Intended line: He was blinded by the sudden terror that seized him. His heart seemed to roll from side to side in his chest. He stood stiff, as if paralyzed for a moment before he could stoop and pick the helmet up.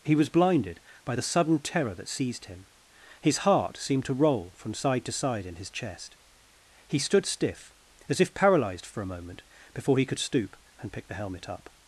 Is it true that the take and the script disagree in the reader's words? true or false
false